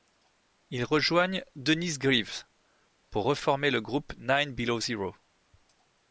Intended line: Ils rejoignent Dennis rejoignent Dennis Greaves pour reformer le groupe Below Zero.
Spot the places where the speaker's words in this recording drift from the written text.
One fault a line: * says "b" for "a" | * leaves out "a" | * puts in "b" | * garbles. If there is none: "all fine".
* leaves out "rejoignent Dennis"
* puts in "Nine"